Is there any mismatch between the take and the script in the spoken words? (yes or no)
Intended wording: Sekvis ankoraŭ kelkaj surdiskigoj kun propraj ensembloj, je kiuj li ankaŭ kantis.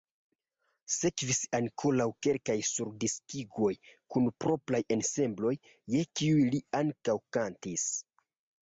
no